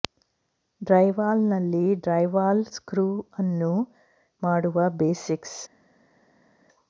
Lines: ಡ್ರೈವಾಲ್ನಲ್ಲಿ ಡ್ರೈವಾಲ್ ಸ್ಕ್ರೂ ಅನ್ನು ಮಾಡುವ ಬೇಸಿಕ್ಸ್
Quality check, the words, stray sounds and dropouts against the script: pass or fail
pass